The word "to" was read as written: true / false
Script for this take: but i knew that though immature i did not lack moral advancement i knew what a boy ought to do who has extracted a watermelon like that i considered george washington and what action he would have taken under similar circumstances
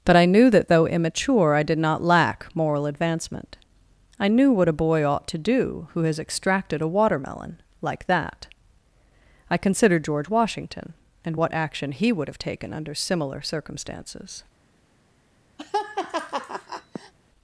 true